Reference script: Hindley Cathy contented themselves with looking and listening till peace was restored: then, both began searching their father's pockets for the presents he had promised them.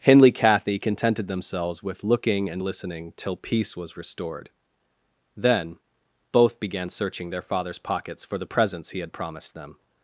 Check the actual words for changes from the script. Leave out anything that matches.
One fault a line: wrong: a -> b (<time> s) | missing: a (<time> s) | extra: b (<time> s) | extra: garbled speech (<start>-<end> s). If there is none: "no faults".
no faults